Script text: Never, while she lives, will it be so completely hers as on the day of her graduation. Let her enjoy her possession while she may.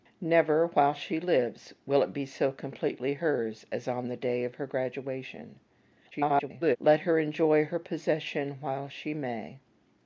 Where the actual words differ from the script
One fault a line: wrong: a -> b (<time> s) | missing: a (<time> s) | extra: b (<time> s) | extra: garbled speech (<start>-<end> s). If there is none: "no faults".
extra: garbled speech (6.1-6.8 s)